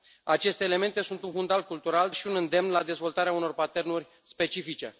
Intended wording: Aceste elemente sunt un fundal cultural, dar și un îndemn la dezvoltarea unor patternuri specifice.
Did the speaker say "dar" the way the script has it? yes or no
no